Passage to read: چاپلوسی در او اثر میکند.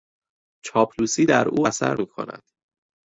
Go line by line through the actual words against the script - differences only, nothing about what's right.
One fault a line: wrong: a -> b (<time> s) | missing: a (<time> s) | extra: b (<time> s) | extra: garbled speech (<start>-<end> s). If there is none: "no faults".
no faults